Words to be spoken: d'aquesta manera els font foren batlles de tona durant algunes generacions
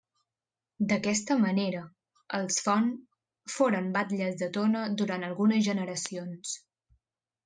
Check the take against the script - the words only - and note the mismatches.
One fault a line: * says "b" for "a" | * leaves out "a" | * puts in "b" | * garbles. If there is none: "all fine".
all fine